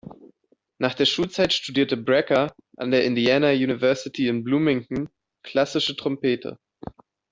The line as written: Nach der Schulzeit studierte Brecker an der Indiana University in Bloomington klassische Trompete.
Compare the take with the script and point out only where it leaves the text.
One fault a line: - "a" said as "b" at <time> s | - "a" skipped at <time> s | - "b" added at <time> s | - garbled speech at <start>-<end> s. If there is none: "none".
none